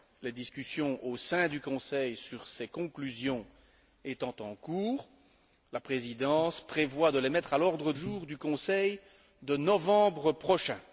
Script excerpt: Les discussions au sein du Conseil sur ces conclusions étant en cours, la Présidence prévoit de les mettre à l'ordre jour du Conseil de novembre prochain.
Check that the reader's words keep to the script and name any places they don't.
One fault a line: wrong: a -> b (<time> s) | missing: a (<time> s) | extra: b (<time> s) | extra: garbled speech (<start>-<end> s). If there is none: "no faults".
no faults